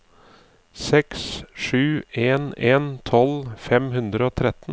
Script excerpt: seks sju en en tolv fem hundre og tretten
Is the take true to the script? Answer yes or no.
yes